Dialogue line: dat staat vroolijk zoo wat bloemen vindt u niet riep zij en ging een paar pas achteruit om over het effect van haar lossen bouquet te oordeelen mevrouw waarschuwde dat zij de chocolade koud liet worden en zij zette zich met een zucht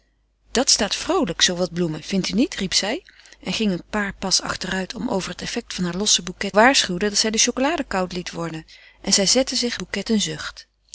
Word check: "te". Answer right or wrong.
wrong